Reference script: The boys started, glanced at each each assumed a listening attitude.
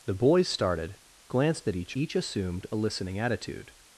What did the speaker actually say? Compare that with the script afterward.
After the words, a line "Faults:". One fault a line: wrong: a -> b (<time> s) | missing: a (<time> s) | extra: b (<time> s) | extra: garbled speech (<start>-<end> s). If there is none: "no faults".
The boys started, glanced at each each assumed a listening attitude.
Faults:
no faults